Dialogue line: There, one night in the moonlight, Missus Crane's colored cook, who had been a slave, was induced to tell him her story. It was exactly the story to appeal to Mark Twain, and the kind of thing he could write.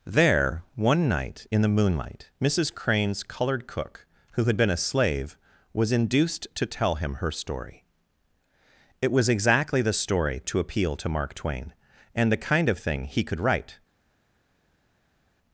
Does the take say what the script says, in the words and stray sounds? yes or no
yes